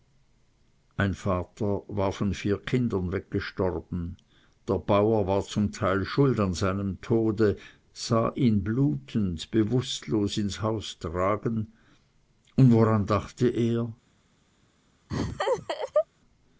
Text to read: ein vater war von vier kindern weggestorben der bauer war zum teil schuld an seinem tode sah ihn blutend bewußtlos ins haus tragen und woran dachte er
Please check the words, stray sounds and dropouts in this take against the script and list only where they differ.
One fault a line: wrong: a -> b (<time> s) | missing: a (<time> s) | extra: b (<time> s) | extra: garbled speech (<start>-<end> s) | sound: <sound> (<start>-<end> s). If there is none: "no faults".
sound: laugh (15.1-16.1 s)